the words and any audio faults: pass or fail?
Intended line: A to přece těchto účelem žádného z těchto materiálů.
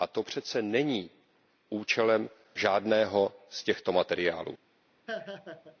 fail